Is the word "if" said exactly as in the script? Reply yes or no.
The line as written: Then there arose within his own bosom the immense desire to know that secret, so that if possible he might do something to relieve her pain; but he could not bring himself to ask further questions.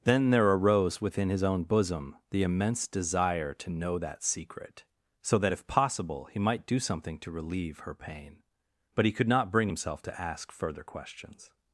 yes